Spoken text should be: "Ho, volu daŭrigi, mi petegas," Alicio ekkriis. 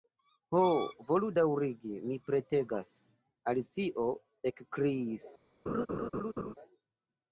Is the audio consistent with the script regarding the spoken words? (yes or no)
yes